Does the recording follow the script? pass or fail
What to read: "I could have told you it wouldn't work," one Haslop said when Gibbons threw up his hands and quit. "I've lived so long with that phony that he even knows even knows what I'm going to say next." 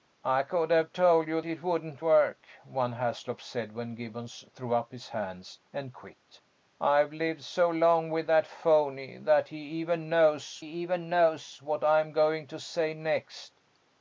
pass